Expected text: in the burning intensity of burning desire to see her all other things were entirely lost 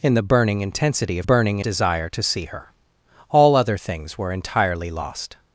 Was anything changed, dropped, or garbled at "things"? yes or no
no